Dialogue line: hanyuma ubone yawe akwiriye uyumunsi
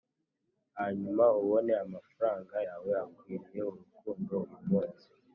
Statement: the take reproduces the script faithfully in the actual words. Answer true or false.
false